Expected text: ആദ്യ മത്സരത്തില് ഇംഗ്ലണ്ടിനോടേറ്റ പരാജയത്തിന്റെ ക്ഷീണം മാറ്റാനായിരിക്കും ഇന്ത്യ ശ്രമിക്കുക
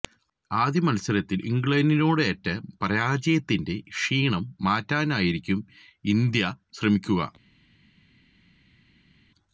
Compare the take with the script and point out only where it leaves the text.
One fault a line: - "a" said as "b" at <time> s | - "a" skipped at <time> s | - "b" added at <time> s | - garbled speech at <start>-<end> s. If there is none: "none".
none